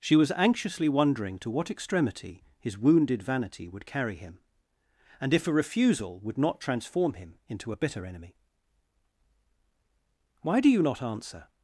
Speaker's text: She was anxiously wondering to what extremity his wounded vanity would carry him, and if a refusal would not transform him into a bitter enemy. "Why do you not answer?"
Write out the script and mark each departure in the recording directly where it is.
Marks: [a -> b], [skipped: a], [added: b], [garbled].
She was anxiously wondering to what extremity his wounded vanity would carry him, and if a refusal would not transform him into a bitter enemy. "Why do you not answer?"